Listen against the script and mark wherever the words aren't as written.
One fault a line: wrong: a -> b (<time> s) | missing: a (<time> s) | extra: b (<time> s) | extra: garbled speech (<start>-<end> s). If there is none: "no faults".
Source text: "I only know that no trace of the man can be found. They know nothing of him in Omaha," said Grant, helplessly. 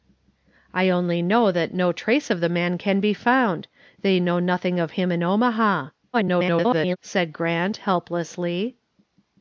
extra: garbled speech (6.1-7.0 s)